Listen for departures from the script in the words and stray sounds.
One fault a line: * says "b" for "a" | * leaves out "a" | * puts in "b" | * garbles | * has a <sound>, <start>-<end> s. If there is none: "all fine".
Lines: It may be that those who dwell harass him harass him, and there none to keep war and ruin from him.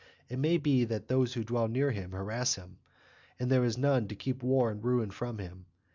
* says "near" for "harass"
* puts in "is"